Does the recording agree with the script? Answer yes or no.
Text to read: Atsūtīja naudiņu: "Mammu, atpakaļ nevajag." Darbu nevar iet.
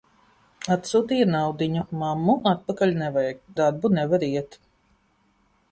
yes